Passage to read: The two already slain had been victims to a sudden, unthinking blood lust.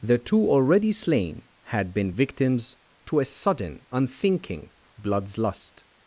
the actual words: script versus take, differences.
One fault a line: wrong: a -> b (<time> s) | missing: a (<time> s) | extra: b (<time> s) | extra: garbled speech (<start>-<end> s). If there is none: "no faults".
wrong: blood -> bloods (5.0 s)